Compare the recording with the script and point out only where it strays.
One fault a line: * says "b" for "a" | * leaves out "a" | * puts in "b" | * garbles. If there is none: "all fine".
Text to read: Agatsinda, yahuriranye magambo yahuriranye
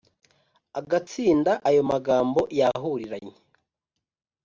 * says "ayo" for "yahuriranye"